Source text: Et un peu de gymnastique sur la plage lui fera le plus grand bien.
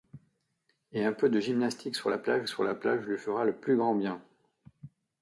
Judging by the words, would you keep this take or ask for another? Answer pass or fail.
fail